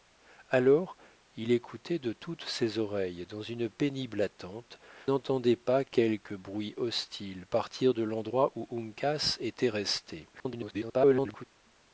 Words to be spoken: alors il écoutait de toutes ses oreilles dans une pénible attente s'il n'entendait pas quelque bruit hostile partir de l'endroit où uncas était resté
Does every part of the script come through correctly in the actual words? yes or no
no